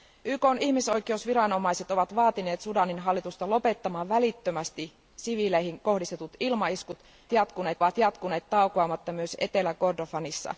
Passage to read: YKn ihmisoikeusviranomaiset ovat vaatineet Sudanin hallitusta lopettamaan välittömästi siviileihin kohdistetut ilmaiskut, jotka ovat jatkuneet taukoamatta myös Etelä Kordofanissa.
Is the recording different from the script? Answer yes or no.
yes